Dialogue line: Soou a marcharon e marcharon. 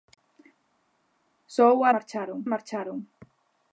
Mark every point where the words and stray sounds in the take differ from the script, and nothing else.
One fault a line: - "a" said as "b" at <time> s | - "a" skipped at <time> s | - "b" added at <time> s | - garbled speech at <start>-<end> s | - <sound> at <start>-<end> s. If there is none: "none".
none